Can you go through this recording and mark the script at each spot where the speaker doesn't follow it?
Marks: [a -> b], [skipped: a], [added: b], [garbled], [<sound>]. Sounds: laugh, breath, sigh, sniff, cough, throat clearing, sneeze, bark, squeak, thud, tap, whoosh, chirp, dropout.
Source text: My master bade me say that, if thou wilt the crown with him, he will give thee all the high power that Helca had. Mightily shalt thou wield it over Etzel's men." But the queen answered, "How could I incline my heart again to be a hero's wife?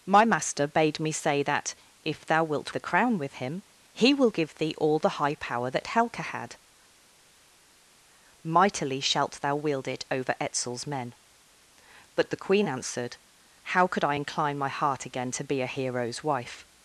My master bade me say that, if thou wilt the crown with him, he will give thee all the high power that Helca had. Mightily shalt thou wield it over Etzel's men." But the queen answered, "How could I incline my heart again to be a hero's wife?